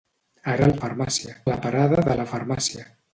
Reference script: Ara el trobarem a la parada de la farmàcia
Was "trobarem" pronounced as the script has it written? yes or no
no